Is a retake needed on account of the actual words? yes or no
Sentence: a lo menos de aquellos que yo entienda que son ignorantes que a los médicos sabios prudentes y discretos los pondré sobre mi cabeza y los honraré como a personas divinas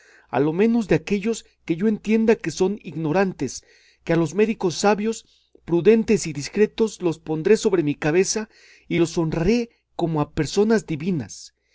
no